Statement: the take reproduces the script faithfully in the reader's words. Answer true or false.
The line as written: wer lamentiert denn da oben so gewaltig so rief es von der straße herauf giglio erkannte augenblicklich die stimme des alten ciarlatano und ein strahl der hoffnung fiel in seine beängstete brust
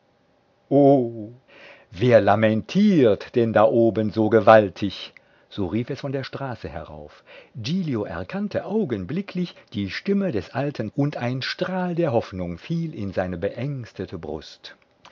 false